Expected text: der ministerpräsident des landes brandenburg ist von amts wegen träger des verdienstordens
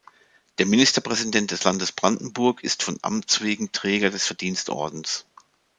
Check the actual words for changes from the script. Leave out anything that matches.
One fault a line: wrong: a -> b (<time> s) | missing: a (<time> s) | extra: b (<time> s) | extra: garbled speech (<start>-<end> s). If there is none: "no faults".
no faults